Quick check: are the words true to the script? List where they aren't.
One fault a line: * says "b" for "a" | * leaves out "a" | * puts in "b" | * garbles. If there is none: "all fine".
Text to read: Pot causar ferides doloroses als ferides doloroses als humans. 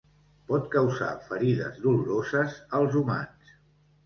* leaves out "ferides doloroses als"